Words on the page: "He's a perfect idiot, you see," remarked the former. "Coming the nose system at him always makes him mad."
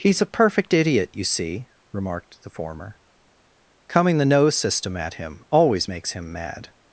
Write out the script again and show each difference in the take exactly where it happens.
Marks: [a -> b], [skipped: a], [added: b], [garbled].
"He's a perfect idiot, you see," remarked the former. "Coming the nose system at him always makes him mad."